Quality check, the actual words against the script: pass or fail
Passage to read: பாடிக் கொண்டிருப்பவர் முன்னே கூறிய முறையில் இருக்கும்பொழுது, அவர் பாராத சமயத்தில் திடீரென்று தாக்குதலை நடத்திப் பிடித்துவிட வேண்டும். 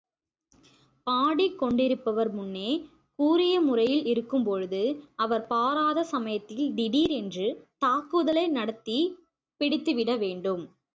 pass